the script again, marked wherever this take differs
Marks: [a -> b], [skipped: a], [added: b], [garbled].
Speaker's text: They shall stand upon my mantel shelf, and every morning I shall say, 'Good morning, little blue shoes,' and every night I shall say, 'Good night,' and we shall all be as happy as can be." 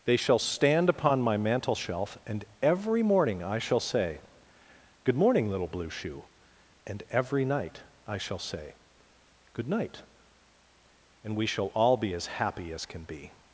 They shall stand upon my mantel shelf, and every morning I shall say, 'Good morning, little blue [shoes,' -> shoe] and every night I shall say, 'Good night,' and we shall all be as happy as can be."